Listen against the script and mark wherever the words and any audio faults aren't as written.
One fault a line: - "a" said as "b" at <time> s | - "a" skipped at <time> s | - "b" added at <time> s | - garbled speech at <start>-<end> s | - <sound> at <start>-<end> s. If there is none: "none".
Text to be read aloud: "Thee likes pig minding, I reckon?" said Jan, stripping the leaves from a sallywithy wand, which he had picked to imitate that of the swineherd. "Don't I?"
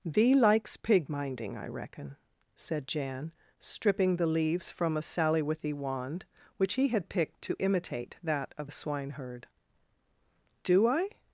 - "Don't" said as "Do" at 10.6 s